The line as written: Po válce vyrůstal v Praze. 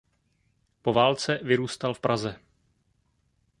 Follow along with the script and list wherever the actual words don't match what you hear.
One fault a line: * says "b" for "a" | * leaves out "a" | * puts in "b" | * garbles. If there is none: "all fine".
all fine